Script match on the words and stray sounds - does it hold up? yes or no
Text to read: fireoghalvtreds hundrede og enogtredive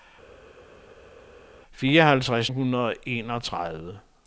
yes